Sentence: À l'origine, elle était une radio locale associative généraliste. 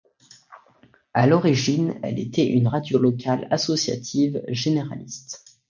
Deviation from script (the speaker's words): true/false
false